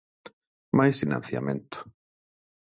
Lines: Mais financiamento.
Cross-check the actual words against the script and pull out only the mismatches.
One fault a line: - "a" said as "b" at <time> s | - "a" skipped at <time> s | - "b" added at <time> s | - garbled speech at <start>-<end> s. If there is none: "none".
none